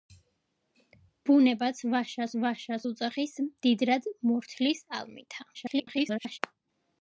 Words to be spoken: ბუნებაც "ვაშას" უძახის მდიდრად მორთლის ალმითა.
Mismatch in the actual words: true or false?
true